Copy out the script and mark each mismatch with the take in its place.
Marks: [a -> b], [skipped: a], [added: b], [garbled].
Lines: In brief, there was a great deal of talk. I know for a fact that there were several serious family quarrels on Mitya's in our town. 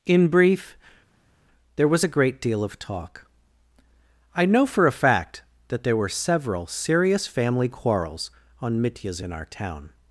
In brief, there was a great deal of talk. I know for a fact that there were several serious family quarrels on Mitya's in our town.